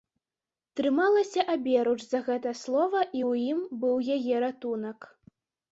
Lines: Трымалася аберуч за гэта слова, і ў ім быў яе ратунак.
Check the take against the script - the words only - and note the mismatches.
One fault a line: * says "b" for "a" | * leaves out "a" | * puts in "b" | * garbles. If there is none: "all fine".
all fine